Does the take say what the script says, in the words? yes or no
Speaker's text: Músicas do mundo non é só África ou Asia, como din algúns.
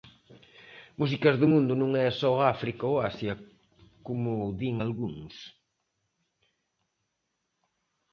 yes